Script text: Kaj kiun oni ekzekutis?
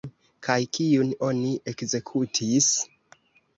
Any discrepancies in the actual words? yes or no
no